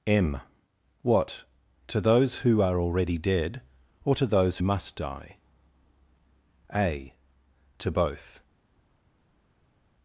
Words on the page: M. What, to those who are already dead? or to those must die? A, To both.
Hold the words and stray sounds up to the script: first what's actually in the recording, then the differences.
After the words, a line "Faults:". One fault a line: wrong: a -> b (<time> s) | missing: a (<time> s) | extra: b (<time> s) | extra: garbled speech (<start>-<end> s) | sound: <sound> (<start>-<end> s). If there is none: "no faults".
M. What, to those who are already dead? or to those must die? A, To both.
Faults:
no faults